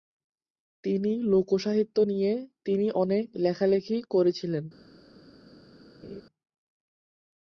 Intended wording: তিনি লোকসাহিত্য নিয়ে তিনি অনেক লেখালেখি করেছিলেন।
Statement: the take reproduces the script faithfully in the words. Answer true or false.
true